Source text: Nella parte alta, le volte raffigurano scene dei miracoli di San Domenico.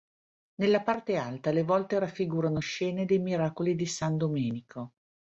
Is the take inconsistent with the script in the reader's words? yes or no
no